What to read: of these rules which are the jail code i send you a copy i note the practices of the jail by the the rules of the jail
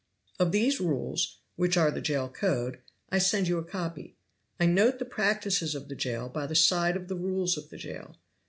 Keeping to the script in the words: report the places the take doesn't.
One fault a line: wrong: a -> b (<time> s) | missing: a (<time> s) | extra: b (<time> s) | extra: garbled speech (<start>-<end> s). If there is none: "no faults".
extra: side of (6.5 s)